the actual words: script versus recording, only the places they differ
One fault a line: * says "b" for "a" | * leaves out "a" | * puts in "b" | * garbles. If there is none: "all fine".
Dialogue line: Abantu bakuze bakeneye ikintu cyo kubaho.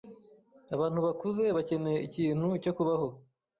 all fine